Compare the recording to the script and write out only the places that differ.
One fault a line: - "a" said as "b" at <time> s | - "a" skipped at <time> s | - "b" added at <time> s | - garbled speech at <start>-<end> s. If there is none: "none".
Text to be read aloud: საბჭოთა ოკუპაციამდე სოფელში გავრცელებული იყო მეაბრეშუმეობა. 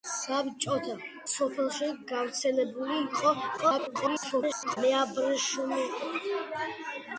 - "ოკუპაციამდე" skipped at 0.9 s
- garbled speech at 3.6-4.8 s